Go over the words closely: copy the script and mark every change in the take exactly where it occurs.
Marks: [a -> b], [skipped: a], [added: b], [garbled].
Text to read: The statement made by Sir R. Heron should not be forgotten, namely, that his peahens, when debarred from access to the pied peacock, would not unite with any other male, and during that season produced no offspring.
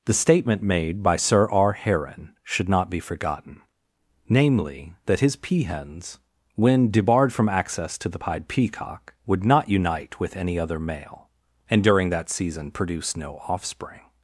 The statement made by Sir R. Heron should not be forgotten, namely, that his peahens, when debarred from access to the pied peacock, would not unite with any other male, and during that season [produced -> produce] no offspring.